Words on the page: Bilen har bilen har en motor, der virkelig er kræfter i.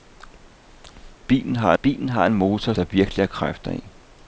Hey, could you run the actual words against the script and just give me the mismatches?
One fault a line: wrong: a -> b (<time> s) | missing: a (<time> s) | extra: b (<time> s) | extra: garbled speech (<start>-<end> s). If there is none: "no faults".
no faults